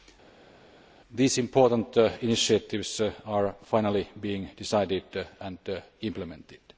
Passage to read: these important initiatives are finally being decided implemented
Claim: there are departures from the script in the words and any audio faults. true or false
true